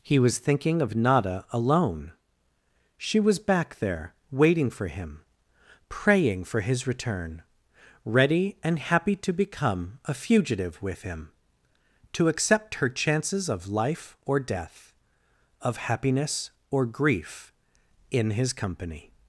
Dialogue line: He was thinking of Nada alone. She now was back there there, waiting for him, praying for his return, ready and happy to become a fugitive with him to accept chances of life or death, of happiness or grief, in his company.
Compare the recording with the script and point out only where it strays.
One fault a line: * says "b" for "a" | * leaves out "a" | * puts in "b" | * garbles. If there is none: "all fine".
* leaves out "now"
* leaves out "there"
* puts in "her"